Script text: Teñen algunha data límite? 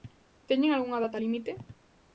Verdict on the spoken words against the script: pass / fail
pass